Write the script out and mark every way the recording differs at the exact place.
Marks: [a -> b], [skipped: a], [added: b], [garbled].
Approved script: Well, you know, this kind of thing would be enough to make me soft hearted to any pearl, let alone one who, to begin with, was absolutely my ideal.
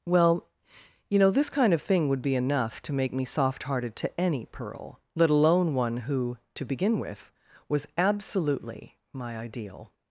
Well, you know, this kind of thing would be enough to make me soft hearted to any pearl, let alone one who, to begin with, was absolutely my ideal.